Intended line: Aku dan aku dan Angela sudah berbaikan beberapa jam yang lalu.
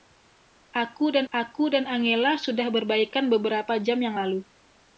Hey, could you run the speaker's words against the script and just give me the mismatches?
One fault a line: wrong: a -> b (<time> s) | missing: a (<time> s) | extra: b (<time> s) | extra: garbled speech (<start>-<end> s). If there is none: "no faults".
no faults